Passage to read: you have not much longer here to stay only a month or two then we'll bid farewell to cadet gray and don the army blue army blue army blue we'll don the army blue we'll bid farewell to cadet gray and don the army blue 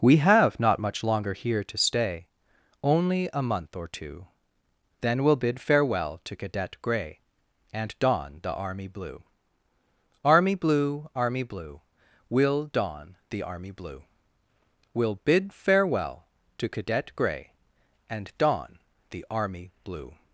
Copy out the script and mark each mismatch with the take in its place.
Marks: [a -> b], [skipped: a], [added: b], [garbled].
[you -> we] have not much longer here to stay only a month or two then we'll bid farewell to cadet gray and don the army blue army blue army blue we'll don the army blue we'll bid farewell to cadet gray and don the army blue